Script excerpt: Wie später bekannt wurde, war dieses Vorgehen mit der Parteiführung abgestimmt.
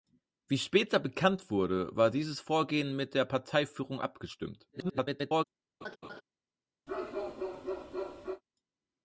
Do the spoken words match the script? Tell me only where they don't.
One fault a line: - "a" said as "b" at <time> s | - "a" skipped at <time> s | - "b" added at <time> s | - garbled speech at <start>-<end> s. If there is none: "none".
- garbled speech at 4.7-5.4 s